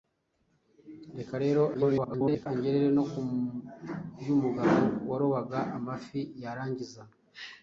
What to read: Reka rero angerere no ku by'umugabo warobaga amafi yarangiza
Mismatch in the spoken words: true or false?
true